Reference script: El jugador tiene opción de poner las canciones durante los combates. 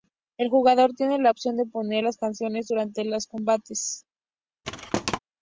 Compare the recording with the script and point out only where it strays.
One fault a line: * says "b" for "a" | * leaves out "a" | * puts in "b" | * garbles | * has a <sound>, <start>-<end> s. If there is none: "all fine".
* puts in "la"
* has a thud, 4.6-5.2 s